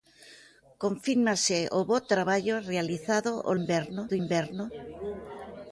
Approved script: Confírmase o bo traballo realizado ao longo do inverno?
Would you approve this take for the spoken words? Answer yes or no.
no